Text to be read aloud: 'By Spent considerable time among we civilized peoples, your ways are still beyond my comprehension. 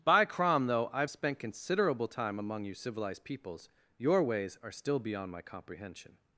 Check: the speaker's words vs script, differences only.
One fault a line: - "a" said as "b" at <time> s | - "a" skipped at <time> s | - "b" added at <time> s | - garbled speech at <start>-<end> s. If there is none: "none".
- "Crom though I've" added at 0.2 s
- "we" said as "you" at 2.6 s